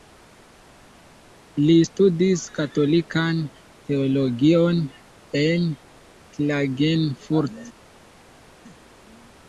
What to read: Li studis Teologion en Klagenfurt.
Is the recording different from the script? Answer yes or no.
yes